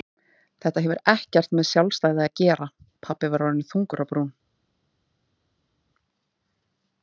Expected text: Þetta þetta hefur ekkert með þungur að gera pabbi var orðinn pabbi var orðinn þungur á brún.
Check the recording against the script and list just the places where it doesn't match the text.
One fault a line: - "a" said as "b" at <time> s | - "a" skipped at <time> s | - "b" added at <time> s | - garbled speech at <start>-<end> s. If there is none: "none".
- "þetta" skipped at 0.8 s
- "þungur" said as "sjálfstæði" at 1.7 s
- "pabbi var orðinn" skipped at 3.7 s